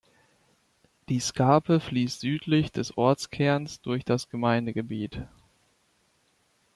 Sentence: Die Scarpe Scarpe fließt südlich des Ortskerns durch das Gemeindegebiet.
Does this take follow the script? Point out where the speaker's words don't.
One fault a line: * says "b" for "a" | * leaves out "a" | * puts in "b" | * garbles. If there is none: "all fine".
* leaves out "Scarpe"